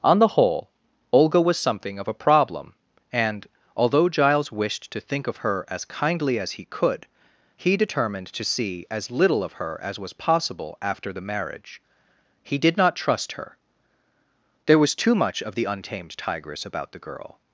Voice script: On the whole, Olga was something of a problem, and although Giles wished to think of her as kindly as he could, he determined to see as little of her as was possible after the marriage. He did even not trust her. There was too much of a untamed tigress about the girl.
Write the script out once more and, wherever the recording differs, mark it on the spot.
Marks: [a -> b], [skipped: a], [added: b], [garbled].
On the whole, Olga was something of a problem, and although Giles wished to think of her as kindly as he could, he determined to see as little of her as was possible after the marriage. He did [skipped: even] not trust her. There was too much of [a -> the] untamed tigress about the girl.